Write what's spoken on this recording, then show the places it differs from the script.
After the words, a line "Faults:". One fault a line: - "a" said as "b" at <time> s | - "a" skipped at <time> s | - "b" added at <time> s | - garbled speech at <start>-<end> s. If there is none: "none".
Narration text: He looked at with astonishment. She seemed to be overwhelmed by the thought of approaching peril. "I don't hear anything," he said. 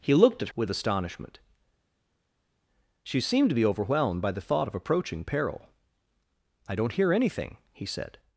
He looked at with astonishment. She seemed to be overwhelmed by the thought of approaching peril. "I don't hear anything," he said.
Faults:
none